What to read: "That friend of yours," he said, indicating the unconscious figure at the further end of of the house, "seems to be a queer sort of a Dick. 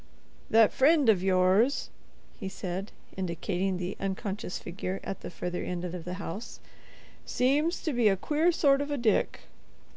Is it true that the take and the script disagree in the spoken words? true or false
false